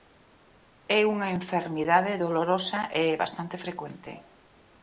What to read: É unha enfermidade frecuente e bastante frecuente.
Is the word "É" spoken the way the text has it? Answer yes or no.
yes